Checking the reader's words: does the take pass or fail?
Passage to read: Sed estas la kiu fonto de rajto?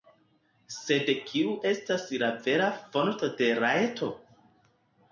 fail